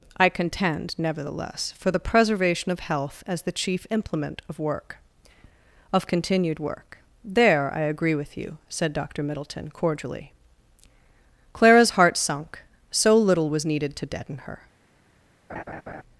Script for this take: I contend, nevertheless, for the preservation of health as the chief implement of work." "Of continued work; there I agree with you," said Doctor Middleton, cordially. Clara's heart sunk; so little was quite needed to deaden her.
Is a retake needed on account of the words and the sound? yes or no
yes